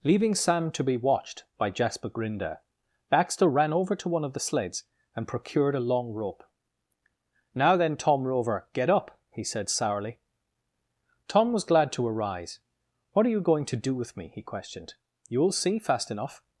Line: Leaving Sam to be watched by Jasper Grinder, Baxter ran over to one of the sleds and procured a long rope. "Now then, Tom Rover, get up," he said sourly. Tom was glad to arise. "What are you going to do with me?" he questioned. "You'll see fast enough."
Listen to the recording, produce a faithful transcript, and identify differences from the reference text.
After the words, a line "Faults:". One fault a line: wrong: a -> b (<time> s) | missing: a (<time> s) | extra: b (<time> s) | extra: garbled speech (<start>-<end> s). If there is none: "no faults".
Leaving Sam to be watched by Jasper Grinder, Baxter ran over to one of the sleds and procured a long rope. "Now then, Tom Rover, get up," he said sourly. Tom was glad to arise. "What are you going to do with me?" he questioned. "You'll see fast enough."
Faults:
no faults